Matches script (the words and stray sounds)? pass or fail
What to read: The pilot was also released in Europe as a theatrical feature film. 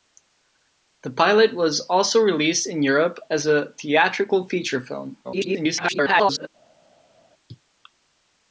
fail